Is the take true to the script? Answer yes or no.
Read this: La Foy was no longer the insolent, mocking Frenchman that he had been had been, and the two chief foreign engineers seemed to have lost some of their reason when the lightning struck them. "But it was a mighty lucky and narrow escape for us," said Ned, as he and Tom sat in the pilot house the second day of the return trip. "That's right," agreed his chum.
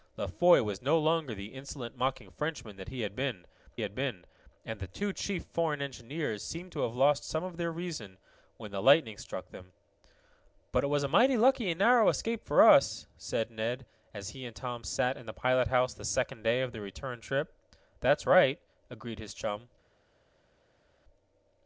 yes